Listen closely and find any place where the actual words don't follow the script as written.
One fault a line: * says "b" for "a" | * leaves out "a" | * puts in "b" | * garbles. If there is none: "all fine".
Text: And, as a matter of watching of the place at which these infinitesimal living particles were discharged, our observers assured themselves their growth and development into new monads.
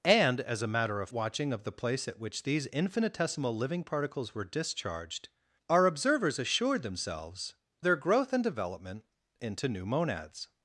all fine